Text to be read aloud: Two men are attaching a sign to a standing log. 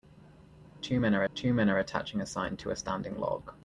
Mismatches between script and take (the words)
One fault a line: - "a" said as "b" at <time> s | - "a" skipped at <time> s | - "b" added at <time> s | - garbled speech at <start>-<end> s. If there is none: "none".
- "two men are" added at 1.3 s